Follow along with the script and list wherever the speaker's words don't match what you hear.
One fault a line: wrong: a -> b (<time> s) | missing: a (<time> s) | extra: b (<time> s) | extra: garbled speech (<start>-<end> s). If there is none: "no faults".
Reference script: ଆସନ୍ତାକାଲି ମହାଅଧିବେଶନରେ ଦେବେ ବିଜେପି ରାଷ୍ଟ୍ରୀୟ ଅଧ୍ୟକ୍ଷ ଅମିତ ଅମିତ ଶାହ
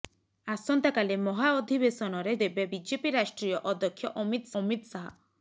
no faults